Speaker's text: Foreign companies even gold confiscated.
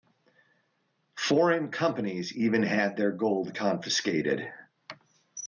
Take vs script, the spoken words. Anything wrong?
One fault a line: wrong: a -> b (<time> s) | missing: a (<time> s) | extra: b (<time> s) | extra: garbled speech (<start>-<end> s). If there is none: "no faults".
extra: had their (2.6 s)